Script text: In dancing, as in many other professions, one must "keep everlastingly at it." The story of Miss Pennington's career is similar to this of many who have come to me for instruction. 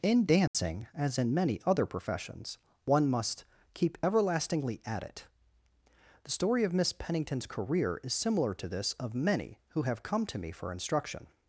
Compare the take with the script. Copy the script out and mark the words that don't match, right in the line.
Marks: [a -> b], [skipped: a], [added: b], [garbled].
In dancing, as in many other professions, one must "keep everlastingly at it." The story of Miss Pennington's career is similar to this of many who have come to me for instruction.